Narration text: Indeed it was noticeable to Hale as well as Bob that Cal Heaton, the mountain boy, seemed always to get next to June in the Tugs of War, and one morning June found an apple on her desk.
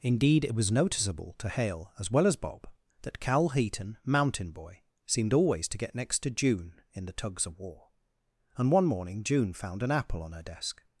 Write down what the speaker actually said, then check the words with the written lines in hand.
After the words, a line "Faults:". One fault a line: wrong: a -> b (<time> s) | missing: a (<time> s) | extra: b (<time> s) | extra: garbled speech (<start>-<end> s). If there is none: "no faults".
Indeed it was noticeable to Hale as well as Bob that Cal Heaton, mountain boy, seemed always to get next to June in the Tugs of War, and one morning June found an apple on her desk.
Faults:
missing: the (4.0 s)